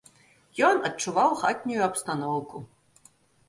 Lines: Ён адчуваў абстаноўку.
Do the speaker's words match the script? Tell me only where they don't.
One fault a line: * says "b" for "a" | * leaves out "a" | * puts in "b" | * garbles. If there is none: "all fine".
* puts in "хатнюю"